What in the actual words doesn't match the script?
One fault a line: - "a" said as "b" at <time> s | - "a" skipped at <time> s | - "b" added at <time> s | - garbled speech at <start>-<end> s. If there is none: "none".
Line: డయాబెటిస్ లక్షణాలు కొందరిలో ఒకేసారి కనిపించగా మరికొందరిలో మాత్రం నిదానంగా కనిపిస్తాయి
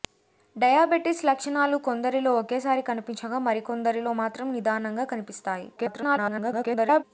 - garbled speech at 5.8-7.0 s